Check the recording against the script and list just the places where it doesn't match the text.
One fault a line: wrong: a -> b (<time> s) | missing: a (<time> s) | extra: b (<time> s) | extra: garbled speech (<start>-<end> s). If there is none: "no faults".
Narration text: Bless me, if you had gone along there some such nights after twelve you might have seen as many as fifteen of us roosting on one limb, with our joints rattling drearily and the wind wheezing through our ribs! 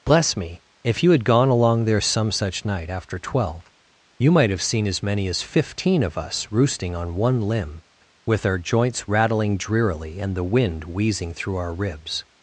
wrong: nights -> night (2.6 s)